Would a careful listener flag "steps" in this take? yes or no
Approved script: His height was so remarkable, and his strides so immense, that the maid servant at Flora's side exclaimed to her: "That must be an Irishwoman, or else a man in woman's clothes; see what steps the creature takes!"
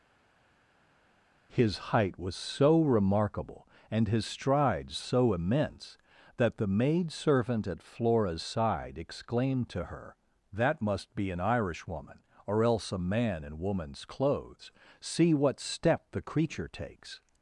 yes